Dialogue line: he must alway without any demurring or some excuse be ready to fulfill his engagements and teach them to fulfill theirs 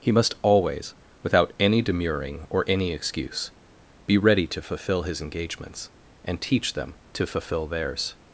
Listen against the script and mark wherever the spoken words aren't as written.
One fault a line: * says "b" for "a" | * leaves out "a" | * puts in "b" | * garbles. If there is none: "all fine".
* says "always" for "alway"
* says "any" for "some"